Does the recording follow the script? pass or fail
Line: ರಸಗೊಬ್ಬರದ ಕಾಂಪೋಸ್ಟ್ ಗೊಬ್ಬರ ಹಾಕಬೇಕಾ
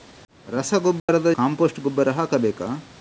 pass